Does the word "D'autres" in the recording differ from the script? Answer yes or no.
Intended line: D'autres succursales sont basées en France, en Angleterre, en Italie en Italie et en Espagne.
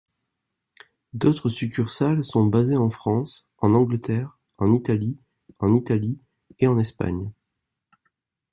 no